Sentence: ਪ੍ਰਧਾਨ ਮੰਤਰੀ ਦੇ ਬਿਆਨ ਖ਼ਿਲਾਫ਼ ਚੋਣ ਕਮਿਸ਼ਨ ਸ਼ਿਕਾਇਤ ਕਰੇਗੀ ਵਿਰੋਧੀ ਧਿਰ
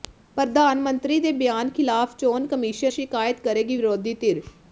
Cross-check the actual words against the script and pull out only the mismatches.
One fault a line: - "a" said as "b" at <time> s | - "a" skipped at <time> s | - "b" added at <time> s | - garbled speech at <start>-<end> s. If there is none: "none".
none